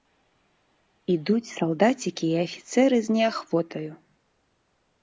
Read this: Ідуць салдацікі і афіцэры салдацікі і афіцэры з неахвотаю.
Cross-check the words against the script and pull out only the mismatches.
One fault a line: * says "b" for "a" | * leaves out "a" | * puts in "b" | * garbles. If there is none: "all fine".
* leaves out "салдацікі і афіцэры"